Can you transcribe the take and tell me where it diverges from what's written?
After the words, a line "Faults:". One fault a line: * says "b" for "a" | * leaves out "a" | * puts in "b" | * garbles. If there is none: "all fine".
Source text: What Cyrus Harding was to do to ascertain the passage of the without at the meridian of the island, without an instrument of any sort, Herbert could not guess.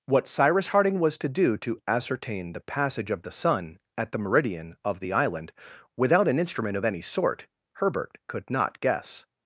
What Cyrus Harding was to do to ascertain the passage of the sun at the meridian of the island, without an instrument of any sort, Herbert could not guess.
Faults:
* says "sun" for "without"